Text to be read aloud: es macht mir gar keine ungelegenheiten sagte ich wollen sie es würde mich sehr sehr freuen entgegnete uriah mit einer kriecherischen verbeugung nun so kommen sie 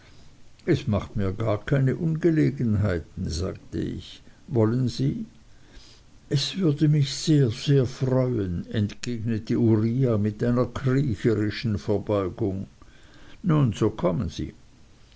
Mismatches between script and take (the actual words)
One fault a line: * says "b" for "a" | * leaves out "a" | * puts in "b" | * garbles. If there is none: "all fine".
all fine